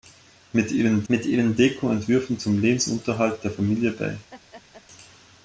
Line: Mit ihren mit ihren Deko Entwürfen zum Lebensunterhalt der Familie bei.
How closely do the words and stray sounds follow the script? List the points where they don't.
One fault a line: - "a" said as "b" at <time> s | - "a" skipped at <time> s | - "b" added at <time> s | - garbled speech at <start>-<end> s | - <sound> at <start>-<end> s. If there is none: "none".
- laugh at 4.3-4.8 s